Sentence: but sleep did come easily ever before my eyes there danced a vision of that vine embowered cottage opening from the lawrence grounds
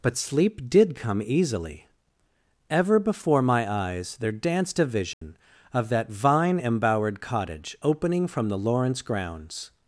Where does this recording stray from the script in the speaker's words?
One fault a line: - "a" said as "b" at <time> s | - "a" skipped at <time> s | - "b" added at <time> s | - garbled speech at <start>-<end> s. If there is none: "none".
none